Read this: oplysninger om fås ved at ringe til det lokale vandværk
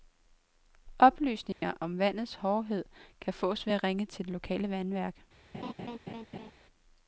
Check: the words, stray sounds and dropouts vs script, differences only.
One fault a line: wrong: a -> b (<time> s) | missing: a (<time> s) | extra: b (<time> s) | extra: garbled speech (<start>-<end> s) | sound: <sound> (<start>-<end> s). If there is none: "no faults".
sound: dropout (1.5-1.6 s)
extra: vandets hårdhed kan (2.0 s)
sound: laugh (5.5-6.5 s)